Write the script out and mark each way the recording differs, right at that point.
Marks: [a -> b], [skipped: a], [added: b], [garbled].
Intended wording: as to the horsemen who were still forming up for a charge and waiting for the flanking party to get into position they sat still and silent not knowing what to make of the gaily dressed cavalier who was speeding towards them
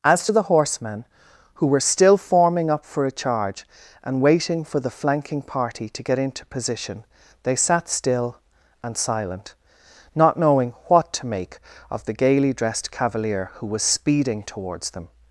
as to the horsemen who were still forming up for a charge and waiting for the flanking party to get into position they sat still and silent not knowing what to make of the gaily dressed cavalier who was speeding towards them